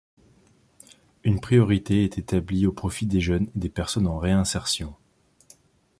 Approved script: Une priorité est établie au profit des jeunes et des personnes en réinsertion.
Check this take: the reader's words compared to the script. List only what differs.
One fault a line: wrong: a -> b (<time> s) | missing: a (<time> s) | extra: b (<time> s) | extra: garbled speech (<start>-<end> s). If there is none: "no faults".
no faults